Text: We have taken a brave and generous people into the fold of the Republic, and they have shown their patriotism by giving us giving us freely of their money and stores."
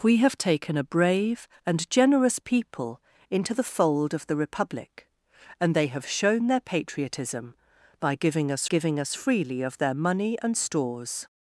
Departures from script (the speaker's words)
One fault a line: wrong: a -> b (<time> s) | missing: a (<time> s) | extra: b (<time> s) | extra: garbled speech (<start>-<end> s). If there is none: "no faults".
no faults